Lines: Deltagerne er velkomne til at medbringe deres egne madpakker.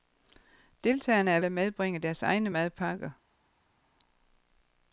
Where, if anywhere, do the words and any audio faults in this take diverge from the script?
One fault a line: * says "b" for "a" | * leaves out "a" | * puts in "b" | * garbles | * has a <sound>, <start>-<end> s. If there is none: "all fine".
* leaves out "velkomne til"